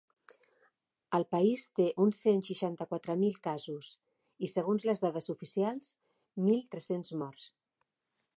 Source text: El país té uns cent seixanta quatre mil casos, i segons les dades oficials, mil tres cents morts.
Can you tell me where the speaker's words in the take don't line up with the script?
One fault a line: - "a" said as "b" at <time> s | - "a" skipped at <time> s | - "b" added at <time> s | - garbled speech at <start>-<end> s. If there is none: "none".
none